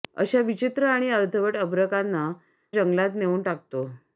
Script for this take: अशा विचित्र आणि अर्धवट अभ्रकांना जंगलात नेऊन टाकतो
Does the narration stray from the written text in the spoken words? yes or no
no